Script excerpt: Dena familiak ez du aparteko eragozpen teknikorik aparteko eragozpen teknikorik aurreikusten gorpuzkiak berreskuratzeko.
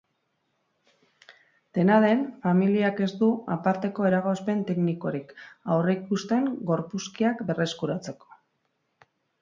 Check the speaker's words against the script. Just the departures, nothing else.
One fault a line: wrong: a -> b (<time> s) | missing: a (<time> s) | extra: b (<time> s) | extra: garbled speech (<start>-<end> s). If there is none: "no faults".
extra: den (2.0 s)
missing: aparteko eragozpen teknikorik (5.4 s)